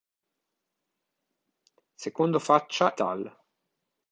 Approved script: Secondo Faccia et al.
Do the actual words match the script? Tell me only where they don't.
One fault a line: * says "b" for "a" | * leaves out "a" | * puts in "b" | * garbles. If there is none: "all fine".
* leaves out "et"